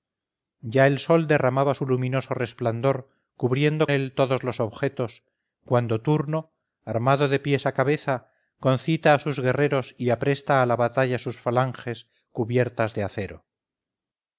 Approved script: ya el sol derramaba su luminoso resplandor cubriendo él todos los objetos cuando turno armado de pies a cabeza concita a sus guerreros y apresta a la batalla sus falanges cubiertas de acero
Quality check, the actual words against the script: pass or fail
pass